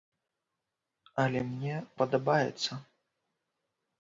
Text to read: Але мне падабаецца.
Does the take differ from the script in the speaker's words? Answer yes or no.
no